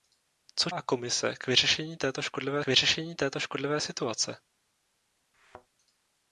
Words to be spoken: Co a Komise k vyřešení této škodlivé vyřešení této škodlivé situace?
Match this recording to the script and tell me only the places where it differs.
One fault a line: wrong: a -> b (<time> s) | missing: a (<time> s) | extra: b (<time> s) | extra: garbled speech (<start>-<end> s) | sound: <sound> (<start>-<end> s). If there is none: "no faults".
sound: thud (5.3-5.7 s)